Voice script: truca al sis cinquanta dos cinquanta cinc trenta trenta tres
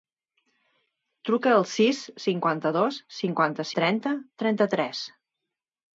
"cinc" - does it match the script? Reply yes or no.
no